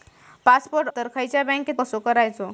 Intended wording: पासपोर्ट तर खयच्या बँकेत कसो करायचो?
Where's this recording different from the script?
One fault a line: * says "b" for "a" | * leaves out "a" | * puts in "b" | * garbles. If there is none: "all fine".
all fine